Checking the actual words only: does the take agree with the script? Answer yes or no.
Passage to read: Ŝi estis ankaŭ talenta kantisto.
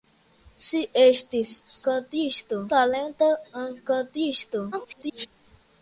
no